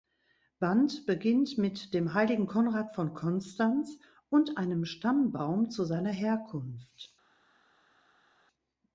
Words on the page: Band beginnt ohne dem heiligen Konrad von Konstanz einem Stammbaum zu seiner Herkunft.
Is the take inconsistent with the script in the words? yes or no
yes